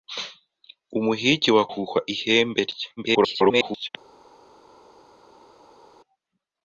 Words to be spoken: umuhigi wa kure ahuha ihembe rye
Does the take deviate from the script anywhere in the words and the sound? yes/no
yes